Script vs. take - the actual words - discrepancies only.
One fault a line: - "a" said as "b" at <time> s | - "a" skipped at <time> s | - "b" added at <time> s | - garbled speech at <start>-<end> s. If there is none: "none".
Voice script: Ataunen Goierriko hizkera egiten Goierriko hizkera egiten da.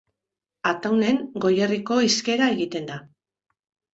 - "Goierriko hizkera egiten" skipped at 2.9 s